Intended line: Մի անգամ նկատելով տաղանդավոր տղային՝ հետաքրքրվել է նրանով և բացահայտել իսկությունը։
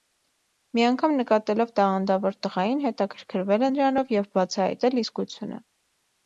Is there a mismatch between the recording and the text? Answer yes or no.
no